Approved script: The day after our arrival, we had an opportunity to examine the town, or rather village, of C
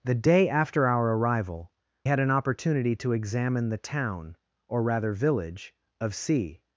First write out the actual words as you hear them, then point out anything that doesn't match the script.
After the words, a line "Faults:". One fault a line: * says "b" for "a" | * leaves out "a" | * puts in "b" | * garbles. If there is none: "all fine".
The day after our arrival, had an opportunity to examine the town, or rather village, of C
Faults:
* leaves out "we"